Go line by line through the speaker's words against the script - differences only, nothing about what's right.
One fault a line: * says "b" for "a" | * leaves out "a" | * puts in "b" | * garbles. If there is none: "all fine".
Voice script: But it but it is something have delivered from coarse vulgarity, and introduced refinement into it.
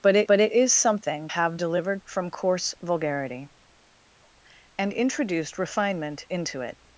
all fine